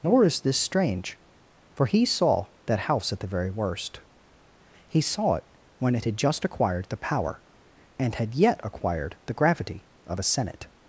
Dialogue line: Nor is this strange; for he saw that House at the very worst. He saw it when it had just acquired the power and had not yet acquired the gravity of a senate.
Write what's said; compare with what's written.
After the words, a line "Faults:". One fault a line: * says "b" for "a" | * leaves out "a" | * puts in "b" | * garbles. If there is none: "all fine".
Nor is this strange; for he saw that House at the very worst. He saw it when it had just acquired the power and had yet acquired the gravity of a senate.
Faults:
* leaves out "not"